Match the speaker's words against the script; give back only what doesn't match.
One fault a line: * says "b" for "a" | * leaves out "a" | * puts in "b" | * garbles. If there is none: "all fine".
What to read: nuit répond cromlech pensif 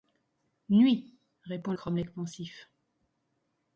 all fine